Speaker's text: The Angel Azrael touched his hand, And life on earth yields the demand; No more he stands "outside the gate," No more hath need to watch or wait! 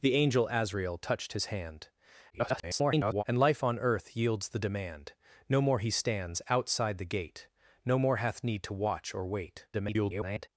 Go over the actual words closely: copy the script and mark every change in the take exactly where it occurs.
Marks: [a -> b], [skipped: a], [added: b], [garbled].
The Angel Azrael touched his hand, [garbled] And life on earth yields the demand; No more he stands "outside the gate," No more hath need to watch or wait! [garbled]